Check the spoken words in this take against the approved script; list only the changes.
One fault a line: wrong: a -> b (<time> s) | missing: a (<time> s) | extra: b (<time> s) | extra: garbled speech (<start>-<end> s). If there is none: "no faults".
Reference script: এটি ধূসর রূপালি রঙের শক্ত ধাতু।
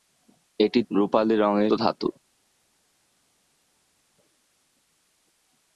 missing: ধূসর (0.8 s)
missing: শক্ত (1.7 s)